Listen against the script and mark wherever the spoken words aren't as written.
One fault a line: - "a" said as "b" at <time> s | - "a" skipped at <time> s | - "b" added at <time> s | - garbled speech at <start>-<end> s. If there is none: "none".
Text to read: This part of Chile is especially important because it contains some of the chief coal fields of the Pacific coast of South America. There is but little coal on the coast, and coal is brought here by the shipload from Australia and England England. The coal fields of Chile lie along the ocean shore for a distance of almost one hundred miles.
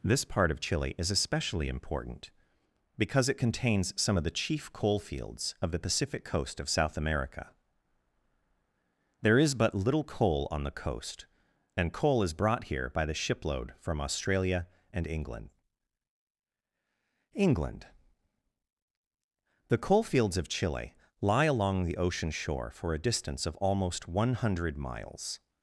none